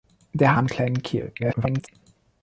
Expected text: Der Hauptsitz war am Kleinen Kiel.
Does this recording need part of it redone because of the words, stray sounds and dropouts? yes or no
yes